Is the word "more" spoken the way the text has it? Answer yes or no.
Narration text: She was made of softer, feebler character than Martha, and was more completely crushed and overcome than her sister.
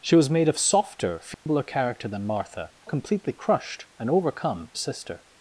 no